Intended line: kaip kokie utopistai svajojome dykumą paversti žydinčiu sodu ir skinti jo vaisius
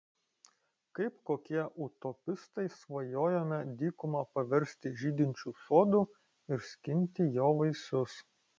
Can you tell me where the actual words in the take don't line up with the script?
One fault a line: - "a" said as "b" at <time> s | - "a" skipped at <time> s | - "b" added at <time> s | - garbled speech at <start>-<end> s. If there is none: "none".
none